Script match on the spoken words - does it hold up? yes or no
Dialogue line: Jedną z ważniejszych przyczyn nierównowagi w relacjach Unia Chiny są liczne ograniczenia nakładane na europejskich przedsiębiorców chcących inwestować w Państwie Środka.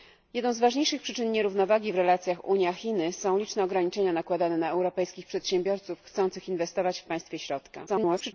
no